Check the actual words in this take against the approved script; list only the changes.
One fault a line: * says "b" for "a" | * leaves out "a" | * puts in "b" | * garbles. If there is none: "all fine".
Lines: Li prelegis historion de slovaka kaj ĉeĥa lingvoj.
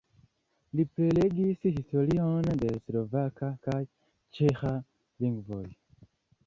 all fine